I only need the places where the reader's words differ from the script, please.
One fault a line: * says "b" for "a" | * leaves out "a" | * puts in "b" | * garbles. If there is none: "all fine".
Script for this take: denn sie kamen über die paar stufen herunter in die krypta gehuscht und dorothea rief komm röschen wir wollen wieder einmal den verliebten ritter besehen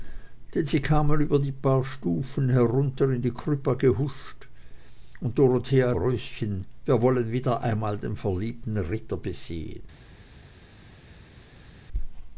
* leaves out "rief komm"